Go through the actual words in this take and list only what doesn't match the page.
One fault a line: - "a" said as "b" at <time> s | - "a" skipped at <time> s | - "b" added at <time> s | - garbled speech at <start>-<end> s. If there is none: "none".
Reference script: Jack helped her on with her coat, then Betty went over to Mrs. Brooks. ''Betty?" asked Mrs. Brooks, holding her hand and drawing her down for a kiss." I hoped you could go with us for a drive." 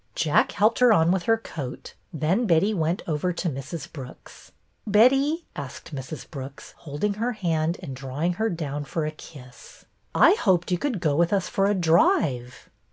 none